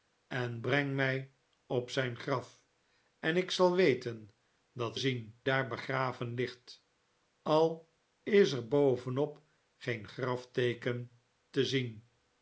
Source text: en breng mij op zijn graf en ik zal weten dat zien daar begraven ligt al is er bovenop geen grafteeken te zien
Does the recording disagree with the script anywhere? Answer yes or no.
no